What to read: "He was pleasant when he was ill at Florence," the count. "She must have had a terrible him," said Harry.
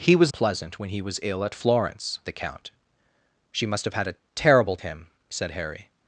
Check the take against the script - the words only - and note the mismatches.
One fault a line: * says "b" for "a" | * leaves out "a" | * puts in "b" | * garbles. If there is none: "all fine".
all fine